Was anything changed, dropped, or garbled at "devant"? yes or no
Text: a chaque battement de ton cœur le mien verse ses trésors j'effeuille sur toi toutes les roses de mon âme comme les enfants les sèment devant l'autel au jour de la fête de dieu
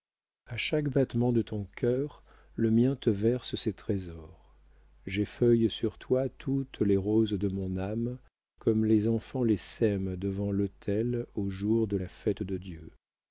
no